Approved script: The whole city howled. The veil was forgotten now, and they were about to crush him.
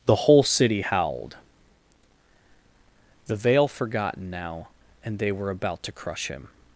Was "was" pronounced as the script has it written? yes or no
no